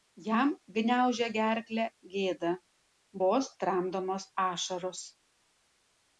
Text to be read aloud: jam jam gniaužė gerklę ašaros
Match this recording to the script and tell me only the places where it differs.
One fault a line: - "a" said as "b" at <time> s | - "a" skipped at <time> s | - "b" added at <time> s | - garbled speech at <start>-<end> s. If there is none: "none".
- "jam" skipped at 0.5 s
- "gėda vos tramdomos" added at 2.1 s